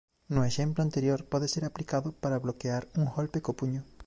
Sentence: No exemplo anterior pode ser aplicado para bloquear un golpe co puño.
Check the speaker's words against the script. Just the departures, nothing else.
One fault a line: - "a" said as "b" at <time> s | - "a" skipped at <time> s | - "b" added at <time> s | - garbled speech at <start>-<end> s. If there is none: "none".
none